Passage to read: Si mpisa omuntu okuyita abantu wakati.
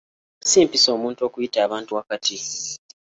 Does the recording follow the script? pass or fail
pass